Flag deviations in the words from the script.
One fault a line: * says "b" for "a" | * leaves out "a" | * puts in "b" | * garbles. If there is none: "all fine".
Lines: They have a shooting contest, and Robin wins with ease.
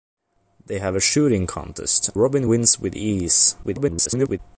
* leaves out "and"
* garbles